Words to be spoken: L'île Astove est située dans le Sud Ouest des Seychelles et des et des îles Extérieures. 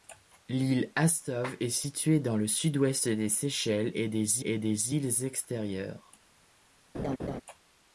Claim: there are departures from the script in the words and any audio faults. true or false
true